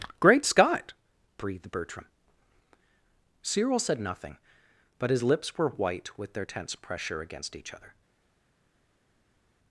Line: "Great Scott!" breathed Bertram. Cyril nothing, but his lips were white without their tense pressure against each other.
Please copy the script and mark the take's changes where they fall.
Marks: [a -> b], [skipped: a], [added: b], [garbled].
"Great Scott!" breathed Bertram. Cyril [added: said] nothing, but his lips were white [without -> with] their tense pressure against each other.